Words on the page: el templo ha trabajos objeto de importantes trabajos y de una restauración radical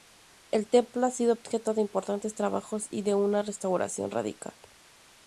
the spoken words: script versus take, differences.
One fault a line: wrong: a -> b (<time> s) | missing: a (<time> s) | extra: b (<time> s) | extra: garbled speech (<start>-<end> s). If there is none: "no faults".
wrong: trabajos -> sido (1.1 s)